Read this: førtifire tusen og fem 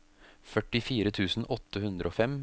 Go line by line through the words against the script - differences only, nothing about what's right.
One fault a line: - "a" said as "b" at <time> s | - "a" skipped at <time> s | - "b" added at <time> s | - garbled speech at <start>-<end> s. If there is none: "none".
- "åtte hundre" added at 1.5 s